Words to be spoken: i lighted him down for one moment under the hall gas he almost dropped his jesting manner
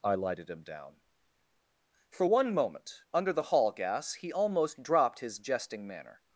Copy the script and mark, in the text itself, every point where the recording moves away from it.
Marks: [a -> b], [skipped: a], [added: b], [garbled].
i lighted him down for one moment under the hall gas he almost dropped his jesting manner